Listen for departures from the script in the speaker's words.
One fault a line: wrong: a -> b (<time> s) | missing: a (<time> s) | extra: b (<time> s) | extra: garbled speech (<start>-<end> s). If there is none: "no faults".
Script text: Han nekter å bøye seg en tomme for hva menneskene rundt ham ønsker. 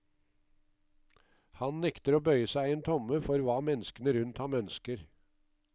no faults